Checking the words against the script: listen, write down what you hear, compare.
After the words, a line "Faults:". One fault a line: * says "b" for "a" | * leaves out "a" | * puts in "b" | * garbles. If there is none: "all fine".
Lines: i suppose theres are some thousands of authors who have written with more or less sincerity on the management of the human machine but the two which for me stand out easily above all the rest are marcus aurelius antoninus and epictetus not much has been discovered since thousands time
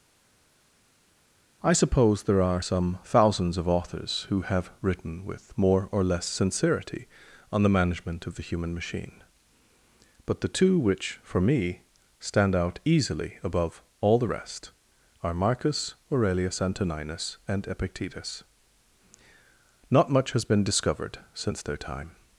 i suppose there are some thousands of authors who have written with more or less sincerity on the management of the human machine but the two which for me stand out easily above all the rest are marcus aurelius antoninus and epictetus not much has been discovered since their time
Faults:
* says "there" for "theres"
* says "their" for "thousands"